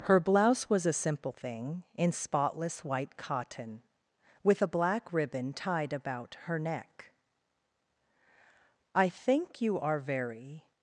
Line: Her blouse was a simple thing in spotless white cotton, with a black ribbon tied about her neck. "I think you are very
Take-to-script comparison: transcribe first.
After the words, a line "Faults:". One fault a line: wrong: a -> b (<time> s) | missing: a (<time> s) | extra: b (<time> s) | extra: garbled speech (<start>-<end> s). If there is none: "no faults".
Her blouse was a simple thing in spotless white cotton, with a black ribbon tied about her neck. "I think you are very
Faults:
no faults